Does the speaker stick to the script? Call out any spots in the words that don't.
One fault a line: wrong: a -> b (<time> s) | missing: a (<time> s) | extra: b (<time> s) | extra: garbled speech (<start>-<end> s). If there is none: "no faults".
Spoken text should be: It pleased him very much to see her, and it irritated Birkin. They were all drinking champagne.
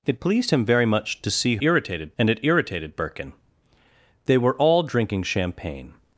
wrong: her -> irritated (1.6 s)